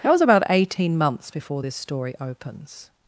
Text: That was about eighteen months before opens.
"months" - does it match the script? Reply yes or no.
yes